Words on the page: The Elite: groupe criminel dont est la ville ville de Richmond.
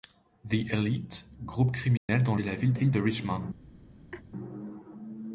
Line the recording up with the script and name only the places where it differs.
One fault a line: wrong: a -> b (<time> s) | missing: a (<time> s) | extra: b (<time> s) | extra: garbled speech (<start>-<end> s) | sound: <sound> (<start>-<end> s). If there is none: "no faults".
sound: dropout (2.0-2.1 s)
sound: laugh (4.1-4.2 s)